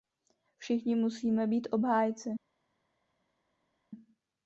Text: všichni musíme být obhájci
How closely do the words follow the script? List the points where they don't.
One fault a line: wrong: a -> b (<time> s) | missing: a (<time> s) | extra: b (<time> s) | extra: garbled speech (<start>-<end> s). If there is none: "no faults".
no faults